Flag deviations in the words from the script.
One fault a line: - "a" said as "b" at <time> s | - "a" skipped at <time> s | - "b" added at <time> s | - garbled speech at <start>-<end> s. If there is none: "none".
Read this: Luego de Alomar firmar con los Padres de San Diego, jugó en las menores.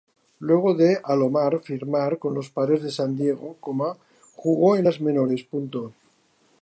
none